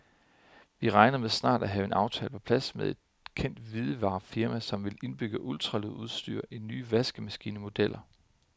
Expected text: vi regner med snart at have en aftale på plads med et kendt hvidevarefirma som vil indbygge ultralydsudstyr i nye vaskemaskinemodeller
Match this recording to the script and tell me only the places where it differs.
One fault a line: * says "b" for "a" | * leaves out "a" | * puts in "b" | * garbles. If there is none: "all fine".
all fine